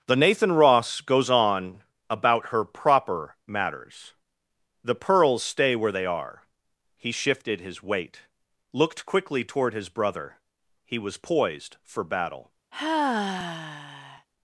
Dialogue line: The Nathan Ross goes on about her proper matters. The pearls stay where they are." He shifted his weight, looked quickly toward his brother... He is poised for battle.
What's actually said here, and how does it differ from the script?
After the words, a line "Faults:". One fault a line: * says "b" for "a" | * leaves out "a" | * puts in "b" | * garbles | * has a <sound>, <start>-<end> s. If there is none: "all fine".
The Nathan Ross goes on about her proper matters. The pearls stay where they are." He shifted his weight, looked quickly toward his brother... He was poised for battle.
Faults:
* says "was" for "is"
* has a sigh, 12.7-14.3 s